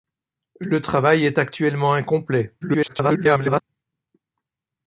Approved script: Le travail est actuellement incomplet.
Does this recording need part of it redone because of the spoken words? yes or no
yes